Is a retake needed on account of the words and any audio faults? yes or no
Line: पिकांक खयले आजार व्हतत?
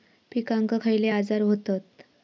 no